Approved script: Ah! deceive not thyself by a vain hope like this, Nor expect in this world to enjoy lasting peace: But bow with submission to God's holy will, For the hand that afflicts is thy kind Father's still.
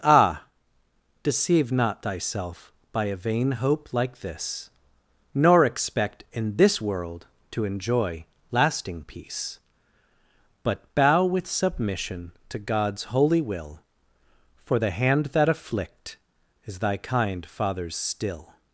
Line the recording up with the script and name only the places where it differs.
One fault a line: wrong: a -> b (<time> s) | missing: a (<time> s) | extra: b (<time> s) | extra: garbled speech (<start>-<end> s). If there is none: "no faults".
wrong: afflicts -> afflict (15.5 s)